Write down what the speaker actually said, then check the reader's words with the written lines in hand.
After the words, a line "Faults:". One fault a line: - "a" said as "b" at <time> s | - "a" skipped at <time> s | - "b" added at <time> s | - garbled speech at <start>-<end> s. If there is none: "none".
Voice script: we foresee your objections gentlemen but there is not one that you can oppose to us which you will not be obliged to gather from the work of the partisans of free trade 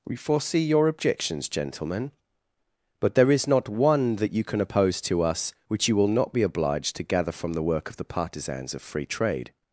we foresee your objections gentlemen but there is not one that you can oppose to us which you will not be obliged to gather from the work of the partisans of free trade
Faults:
none